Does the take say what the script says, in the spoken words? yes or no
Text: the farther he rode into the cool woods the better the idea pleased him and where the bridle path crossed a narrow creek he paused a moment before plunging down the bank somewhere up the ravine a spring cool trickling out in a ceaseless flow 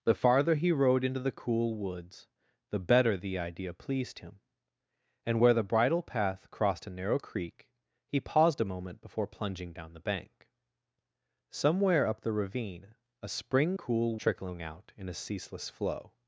yes